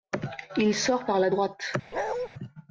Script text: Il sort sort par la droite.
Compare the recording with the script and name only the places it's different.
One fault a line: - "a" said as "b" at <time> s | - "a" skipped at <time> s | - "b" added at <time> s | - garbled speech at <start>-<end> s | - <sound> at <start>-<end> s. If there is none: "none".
- "sort" skipped at 1.1 s
- bark at 1.9-2.3 s